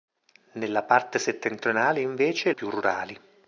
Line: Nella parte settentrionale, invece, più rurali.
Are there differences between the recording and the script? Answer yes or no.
no